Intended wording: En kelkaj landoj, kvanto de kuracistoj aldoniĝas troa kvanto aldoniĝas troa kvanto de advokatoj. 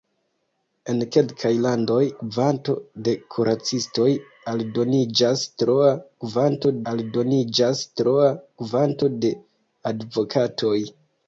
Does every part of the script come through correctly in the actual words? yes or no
yes